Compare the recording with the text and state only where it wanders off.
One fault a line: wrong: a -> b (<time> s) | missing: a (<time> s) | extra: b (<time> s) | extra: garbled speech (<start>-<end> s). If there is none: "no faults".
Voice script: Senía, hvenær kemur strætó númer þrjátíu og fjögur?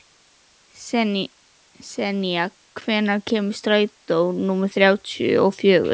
no faults